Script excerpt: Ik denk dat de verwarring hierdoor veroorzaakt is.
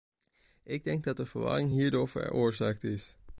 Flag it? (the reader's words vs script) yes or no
no